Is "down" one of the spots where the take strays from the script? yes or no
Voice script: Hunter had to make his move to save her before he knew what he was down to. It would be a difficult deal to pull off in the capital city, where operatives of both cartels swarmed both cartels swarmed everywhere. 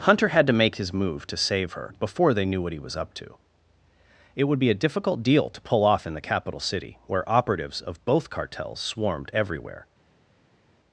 yes